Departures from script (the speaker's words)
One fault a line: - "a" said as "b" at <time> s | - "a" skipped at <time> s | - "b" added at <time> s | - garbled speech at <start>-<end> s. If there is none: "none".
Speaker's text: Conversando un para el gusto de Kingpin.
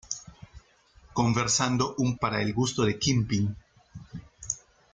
none